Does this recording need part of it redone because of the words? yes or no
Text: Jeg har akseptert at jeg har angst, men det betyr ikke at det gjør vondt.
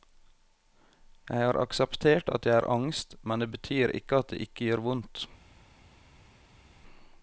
yes